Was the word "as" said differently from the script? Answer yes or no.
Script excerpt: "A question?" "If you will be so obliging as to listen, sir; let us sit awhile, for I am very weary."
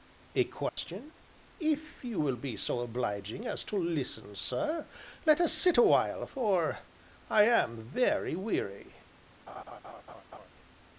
no